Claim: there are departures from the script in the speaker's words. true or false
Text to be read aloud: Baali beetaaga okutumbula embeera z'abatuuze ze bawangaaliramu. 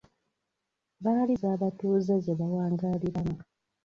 true